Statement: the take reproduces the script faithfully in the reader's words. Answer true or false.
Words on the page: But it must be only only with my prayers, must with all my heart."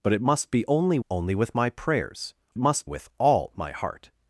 true